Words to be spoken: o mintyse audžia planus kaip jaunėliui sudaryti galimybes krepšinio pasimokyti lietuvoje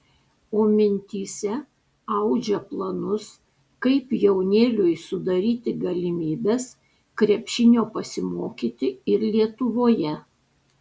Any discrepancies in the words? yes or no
yes